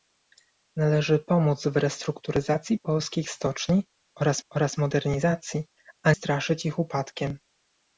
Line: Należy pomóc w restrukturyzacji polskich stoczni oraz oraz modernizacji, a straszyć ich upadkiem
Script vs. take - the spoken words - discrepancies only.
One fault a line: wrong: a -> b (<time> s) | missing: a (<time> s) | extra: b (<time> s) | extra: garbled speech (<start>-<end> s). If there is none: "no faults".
no faults